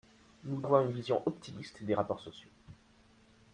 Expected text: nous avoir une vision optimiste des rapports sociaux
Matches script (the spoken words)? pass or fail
pass